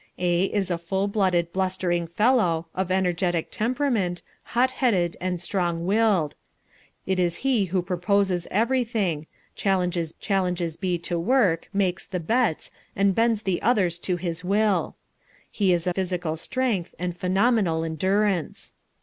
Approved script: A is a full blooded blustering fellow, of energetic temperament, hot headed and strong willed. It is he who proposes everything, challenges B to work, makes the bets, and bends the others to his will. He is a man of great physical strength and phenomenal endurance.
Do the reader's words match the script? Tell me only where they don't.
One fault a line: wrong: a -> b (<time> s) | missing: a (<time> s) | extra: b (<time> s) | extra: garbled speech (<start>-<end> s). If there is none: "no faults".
extra: challenges (10.2 s)
missing: man of great (15.9 s)